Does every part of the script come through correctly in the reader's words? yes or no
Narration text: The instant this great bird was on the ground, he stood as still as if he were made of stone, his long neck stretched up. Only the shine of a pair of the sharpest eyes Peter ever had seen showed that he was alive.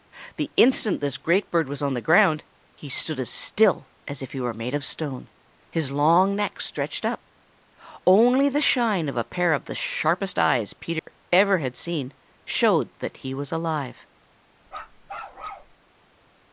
yes